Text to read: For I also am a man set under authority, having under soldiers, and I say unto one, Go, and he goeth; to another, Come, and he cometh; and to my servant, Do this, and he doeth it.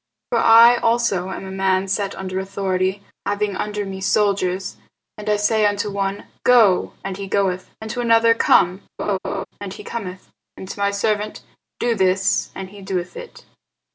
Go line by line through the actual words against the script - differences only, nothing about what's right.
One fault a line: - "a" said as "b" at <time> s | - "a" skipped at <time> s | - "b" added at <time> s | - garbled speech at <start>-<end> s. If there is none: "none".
- "me" added at 3.9 s
- "and" added at 7.8 s